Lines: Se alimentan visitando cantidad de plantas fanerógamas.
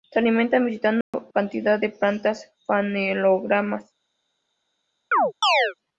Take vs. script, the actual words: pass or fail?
pass